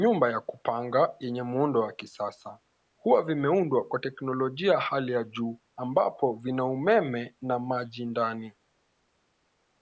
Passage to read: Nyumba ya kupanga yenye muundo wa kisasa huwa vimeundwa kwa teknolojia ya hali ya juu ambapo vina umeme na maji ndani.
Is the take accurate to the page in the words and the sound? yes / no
yes